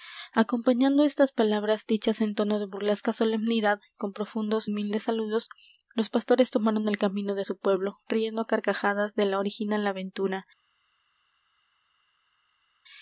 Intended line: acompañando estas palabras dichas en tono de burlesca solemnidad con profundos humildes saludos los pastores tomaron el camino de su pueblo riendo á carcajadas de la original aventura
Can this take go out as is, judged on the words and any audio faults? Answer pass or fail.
pass